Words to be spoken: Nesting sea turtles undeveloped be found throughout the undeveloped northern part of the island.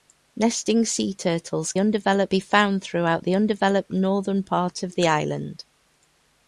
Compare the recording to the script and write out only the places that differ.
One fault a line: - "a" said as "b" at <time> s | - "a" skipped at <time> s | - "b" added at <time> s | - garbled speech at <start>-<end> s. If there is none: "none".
none